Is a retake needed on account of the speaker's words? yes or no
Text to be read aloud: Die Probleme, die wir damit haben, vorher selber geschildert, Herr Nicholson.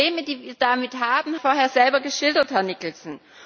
no